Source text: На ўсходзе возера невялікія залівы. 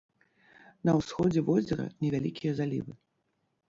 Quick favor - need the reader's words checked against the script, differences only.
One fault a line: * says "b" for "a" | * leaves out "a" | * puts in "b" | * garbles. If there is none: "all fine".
all fine